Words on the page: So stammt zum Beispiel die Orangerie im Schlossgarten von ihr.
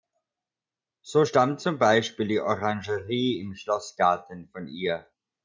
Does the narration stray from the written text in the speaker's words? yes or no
no